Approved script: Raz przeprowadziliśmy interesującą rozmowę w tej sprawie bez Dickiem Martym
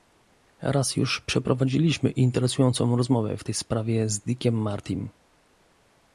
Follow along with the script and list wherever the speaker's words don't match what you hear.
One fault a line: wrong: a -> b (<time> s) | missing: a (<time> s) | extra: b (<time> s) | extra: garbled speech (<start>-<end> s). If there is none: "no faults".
extra: już (0.9 s)
wrong: bez -> z (4.1 s)